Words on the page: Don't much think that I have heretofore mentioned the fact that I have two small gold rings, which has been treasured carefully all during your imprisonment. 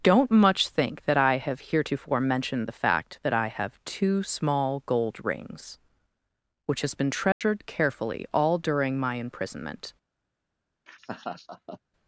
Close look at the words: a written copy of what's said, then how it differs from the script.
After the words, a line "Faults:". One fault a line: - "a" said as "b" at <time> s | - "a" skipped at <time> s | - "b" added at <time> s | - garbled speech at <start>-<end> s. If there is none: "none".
Don't much think that I have heretofore mentioned the fact that I have two small gold rings, which has been treasured carefully all during my imprisonment.
Faults:
- "your" said as "my" at 9.0 s